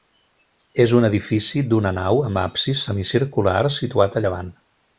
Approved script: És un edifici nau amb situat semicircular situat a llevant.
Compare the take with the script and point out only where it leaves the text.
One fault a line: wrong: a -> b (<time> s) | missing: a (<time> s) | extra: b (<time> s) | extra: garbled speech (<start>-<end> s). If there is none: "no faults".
extra: d'una (1.7 s)
wrong: situat -> absis (2.5 s)